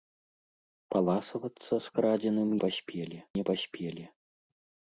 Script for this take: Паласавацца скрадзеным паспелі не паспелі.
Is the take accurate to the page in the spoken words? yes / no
yes